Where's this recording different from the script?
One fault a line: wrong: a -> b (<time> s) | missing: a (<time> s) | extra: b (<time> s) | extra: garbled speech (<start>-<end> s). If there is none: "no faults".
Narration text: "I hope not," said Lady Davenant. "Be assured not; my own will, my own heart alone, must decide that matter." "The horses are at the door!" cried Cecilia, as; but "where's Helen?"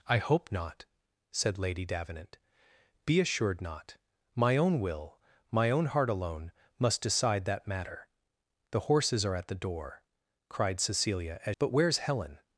no faults